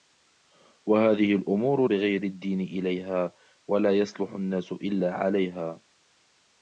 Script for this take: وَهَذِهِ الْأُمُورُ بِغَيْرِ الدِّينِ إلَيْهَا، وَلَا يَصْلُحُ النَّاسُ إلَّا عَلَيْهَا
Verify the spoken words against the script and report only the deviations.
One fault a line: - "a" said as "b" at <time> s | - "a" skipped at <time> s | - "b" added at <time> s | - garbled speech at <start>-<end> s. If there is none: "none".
none